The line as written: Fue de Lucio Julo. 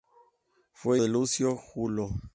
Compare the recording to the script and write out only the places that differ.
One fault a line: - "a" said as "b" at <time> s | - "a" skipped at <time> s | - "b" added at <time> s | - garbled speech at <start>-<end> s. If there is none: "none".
none